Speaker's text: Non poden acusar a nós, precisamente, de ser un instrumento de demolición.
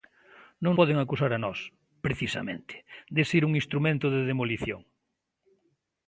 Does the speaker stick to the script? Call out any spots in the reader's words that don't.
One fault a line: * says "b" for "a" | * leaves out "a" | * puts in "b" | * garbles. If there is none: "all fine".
all fine